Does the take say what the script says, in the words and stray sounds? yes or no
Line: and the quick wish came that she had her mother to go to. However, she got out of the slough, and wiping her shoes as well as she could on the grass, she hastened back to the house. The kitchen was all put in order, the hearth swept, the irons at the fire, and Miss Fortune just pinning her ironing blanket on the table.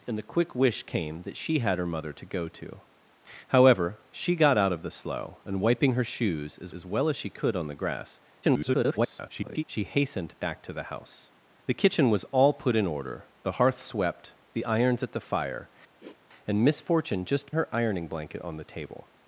no